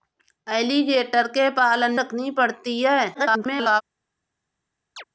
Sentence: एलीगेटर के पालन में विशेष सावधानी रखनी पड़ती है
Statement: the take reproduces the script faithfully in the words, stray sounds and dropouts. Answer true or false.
false